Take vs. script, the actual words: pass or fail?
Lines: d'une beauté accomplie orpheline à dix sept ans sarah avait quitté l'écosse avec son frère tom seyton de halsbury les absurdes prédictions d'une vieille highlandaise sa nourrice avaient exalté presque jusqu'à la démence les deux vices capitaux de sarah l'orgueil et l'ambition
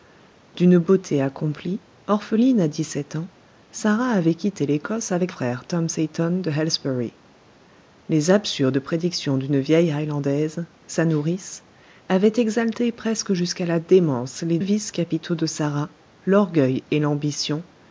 fail